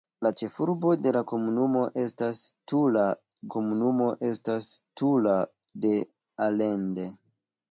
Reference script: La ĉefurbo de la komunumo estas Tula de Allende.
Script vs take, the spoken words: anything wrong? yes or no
yes